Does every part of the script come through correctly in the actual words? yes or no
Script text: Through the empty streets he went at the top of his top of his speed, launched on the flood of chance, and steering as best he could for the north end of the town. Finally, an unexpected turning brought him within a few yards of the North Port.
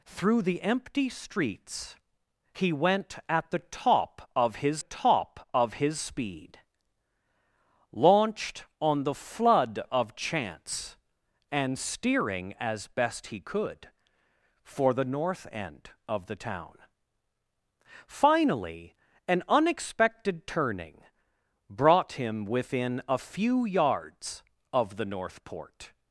yes